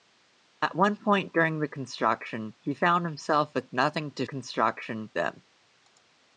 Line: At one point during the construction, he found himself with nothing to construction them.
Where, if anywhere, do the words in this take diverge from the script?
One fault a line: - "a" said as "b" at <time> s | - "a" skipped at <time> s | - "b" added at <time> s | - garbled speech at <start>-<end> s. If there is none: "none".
none